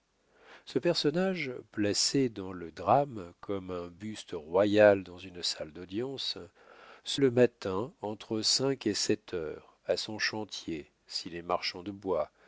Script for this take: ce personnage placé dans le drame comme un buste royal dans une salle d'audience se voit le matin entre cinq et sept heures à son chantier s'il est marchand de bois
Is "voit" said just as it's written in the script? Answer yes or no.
no